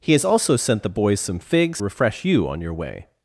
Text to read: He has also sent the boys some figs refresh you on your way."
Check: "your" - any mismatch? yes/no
no